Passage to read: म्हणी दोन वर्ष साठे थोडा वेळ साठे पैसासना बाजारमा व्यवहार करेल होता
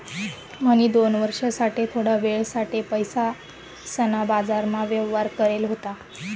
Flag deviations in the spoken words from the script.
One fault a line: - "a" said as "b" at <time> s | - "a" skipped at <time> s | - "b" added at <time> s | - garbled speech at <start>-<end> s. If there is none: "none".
none